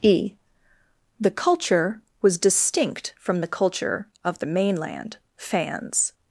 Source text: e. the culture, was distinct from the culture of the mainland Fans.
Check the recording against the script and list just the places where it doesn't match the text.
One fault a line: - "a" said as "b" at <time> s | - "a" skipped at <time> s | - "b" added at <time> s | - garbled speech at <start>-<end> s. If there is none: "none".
none